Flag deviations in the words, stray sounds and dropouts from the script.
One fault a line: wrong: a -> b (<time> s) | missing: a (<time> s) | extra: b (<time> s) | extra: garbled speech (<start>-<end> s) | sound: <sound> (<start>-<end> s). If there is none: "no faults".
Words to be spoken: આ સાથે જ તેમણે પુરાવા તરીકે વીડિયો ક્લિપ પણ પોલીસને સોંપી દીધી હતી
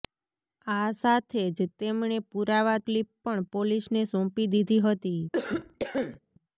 missing: તરીકે વીડિયો (2.8 s)
sound: cough (5.3-6.2 s)